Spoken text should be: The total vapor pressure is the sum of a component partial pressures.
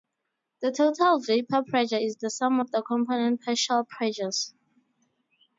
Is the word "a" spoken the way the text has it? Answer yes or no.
no